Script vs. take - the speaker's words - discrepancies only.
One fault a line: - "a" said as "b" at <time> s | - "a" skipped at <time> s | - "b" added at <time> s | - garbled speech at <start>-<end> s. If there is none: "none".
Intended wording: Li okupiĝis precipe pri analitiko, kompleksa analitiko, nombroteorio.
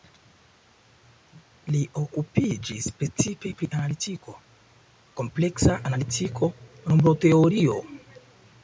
none